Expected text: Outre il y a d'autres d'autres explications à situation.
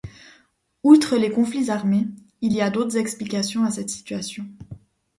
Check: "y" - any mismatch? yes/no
no